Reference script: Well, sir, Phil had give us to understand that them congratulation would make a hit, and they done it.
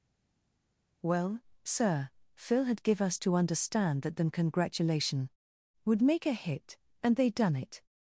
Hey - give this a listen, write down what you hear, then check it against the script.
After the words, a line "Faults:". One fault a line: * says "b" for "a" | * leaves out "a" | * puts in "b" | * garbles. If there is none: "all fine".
Well, sir, Phil had give us to understand that them congratulation would make a hit, and they done it.
Faults:
all fine